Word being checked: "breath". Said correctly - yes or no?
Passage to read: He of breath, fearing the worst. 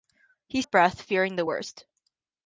yes